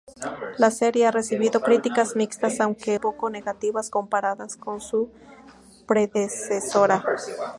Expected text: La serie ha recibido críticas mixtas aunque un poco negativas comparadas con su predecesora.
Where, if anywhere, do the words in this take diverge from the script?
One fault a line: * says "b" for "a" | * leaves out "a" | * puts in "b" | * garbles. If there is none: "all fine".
* leaves out "un"